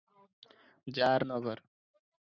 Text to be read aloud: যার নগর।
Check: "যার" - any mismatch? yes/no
no